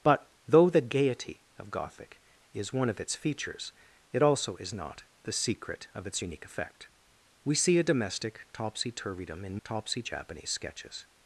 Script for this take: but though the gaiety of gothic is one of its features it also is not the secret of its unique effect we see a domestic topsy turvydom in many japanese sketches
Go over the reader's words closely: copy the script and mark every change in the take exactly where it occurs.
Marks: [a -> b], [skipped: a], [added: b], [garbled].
but though the gaiety of gothic is one of its features it also is not the secret of its unique effect we see a domestic topsy turvydom in [many -> topsy] japanese sketches